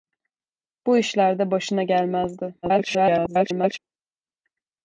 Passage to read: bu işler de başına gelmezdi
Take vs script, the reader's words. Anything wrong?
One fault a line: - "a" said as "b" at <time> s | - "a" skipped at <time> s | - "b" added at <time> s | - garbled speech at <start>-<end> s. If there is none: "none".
- garbled speech at 2.6-3.8 s